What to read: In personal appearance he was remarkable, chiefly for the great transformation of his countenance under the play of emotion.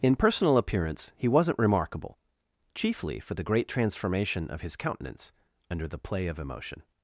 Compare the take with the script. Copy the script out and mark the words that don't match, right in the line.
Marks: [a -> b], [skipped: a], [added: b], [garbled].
In personal appearance he [was -> wasn't] remarkable, chiefly for the great transformation of his countenance under the play of emotion.